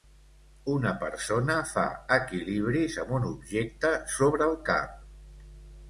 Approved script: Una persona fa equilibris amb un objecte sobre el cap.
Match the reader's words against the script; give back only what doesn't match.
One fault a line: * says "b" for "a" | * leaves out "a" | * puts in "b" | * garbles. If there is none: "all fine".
all fine